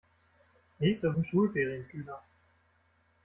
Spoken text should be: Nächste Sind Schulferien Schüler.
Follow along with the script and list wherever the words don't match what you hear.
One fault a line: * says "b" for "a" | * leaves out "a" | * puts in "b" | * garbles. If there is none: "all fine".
all fine